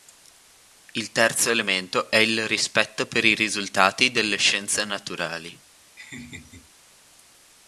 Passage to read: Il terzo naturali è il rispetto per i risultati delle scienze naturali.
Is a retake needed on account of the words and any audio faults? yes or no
yes